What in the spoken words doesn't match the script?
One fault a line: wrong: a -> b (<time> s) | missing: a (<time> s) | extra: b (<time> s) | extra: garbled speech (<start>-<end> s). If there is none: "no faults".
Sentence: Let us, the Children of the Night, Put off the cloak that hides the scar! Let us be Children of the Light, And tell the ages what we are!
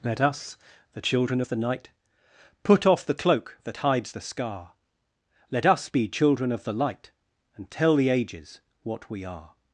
no faults